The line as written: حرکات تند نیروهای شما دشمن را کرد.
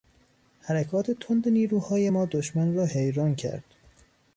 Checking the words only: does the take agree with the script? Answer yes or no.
no